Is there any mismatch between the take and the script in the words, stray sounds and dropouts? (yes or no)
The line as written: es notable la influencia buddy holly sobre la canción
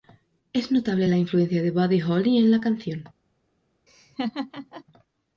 yes